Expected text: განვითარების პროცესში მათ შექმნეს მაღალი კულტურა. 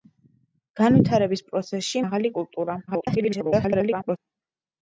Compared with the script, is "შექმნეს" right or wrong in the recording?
wrong